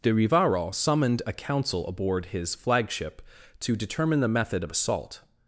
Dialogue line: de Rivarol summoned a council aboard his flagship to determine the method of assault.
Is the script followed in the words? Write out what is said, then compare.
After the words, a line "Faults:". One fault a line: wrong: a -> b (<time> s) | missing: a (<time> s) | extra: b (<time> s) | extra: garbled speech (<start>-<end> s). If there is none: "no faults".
de Rivarol summoned a council aboard his flagship to determine the method of assault.
Faults:
no faults